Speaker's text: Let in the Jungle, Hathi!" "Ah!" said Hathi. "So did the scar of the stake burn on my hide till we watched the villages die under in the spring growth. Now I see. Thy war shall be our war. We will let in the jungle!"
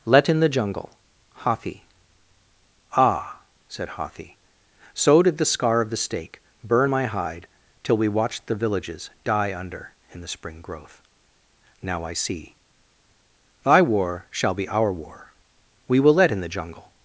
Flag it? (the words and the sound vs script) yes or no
yes